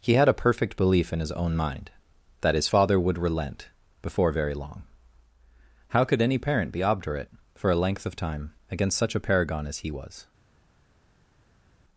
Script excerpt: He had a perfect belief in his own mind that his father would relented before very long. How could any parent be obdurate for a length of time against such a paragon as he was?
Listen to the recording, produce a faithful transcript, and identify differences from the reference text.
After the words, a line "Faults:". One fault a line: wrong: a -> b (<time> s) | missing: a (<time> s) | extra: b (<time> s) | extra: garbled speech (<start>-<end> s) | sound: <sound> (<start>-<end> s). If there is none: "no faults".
He had a perfect belief in his own mind that his father would relent before very long. How could any parent be obdurate for a length of time against such a paragon as he was?
Faults:
wrong: relented -> relent (3.2 s)